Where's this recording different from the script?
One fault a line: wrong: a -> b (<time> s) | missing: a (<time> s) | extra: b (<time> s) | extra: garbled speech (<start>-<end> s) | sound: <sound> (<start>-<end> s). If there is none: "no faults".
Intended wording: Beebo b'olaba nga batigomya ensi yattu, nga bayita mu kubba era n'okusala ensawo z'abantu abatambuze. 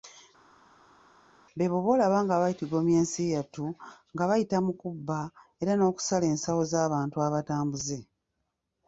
no faults